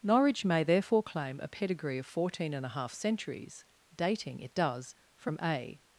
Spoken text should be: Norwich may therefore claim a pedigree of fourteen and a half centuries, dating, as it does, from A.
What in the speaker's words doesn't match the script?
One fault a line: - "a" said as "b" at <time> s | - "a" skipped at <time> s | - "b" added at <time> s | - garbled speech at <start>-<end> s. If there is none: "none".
- "as" skipped at 4.4 s